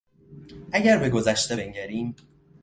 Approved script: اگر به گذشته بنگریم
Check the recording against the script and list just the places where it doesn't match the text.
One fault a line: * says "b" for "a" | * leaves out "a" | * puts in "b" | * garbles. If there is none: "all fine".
all fine